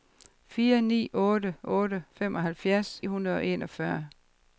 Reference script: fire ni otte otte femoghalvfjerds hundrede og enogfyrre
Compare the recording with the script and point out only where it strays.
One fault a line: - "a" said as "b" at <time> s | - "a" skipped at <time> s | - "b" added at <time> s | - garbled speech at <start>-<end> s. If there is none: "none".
none